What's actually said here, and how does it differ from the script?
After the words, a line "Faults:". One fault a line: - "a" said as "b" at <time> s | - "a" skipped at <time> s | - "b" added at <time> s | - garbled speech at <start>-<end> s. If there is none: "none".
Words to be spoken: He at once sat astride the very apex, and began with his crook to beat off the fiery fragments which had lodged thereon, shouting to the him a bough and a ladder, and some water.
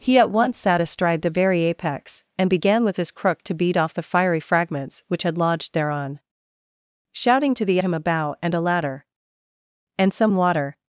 He at once sat astride the very apex, and began with his crook to beat off the fiery fragments which had lodged thereon, shouting to the him a bough and a ladder, and some water.
Faults:
none